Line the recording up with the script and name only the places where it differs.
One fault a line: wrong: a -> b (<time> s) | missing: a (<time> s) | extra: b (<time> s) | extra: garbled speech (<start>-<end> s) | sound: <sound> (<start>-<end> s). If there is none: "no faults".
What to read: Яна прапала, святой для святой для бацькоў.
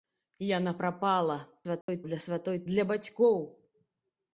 sound: dropout (1.8-1.9 s)